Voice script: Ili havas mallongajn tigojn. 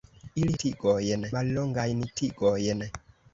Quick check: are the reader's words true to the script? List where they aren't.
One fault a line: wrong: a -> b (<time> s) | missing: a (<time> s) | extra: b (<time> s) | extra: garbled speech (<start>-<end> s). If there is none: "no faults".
wrong: havas -> tigojn (0.6 s)